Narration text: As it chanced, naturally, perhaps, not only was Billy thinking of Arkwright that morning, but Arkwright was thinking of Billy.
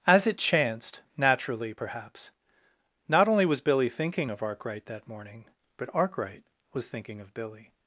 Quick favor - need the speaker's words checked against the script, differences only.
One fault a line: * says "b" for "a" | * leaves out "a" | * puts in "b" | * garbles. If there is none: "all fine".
all fine